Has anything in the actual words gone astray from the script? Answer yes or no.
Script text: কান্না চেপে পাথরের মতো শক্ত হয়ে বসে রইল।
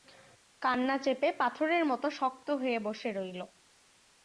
no